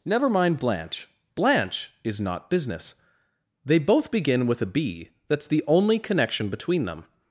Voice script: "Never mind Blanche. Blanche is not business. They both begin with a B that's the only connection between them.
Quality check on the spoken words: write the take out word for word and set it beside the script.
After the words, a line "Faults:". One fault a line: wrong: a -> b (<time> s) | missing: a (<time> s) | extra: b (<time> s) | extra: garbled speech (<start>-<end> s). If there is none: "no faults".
"Never mind Blanche. Blanche is not business. They both begin with a B that's the only connection between them.
Faults:
no faults